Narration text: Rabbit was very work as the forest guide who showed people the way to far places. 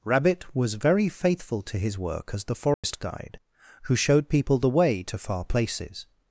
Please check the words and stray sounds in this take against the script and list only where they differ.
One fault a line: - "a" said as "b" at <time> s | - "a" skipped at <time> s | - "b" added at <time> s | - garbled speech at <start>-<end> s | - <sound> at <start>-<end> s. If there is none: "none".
- "faithful to his" added at 1.1 s
- dropout at 2.7-2.8 s